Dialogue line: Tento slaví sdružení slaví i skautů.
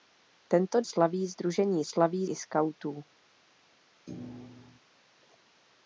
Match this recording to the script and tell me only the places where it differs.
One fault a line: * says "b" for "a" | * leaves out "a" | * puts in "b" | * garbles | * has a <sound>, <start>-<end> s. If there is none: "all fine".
* has a thud, 4.1-4.8 s